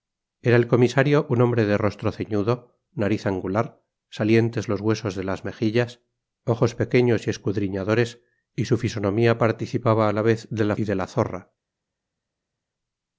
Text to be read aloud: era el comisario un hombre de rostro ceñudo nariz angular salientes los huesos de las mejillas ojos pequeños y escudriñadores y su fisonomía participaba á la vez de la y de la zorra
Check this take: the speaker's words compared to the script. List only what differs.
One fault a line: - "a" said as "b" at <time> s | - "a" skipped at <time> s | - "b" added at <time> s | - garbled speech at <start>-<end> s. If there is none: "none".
none